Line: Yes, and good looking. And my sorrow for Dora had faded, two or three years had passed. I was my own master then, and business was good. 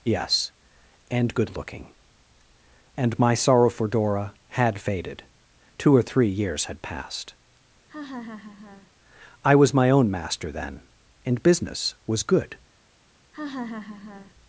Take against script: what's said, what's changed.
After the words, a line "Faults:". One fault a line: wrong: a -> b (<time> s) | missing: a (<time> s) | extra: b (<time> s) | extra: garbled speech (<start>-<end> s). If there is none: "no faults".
Yes, and good looking. And my sorrow for Dora had faded, two or three years had passed. I was my own master then, and business was good.
Faults:
no faults